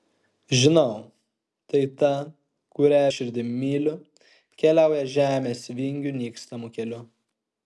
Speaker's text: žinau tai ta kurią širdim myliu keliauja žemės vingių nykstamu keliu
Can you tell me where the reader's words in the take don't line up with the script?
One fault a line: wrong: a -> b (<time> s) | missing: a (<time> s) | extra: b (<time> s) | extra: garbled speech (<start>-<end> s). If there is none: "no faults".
no faults